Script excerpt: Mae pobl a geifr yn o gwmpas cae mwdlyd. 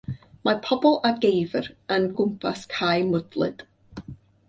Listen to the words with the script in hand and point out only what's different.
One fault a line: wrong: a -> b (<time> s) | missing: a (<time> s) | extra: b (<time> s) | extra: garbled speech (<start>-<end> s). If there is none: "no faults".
no faults